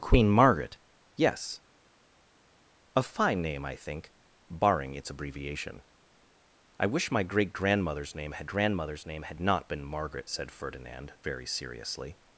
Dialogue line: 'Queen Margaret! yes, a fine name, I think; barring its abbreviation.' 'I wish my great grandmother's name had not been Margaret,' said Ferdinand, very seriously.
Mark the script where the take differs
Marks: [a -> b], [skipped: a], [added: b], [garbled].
'Queen Margaret! yes, a fine name, I think; barring its abbreviation.' 'I wish my great grandmother's name had [added: grandmother's name had] not been Margaret,' said Ferdinand, very seriously.